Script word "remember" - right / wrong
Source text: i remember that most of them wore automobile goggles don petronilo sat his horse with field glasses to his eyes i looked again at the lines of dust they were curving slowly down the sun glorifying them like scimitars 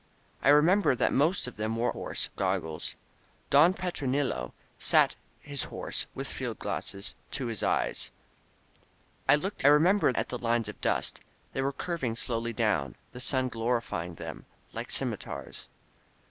right